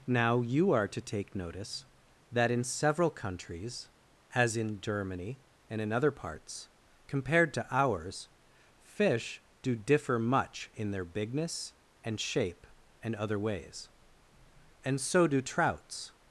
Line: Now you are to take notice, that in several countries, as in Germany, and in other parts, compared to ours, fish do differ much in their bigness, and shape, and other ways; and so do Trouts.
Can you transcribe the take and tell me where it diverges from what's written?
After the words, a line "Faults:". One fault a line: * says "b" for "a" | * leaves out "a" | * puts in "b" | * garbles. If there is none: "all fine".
Now you are to take notice, that in several countries, as in Germany, and in other parts, compared to ours, fish do differ much in their bigness, and shape, and other ways; and so do Trouts.
Faults:
all fine